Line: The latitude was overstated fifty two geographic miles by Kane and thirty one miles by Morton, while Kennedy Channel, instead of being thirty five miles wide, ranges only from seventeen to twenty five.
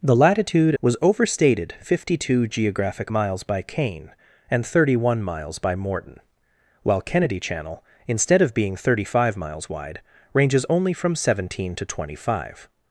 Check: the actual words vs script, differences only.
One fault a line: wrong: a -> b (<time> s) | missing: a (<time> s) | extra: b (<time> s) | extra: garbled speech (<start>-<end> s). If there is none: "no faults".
no faults